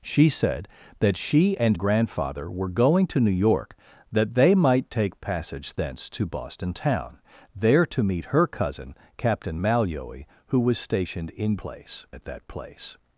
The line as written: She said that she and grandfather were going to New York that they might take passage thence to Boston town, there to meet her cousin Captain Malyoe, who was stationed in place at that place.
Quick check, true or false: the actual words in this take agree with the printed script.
true